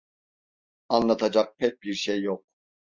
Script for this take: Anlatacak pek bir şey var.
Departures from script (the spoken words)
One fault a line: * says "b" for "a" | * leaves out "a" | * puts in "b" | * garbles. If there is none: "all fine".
* says "yok" for "var"